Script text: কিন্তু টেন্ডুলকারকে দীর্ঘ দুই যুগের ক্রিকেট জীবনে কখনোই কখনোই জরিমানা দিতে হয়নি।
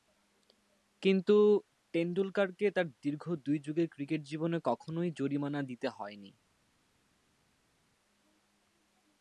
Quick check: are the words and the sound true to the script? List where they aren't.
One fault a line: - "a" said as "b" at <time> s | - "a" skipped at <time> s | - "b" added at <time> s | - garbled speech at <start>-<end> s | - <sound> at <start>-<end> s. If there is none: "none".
- "তার" added at 2.7 s
- "কখনোই" skipped at 5.1 s